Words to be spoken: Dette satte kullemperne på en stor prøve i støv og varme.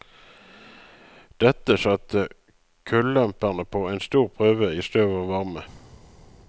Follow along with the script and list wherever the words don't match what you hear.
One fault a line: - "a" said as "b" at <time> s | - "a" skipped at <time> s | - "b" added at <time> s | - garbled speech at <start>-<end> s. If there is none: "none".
none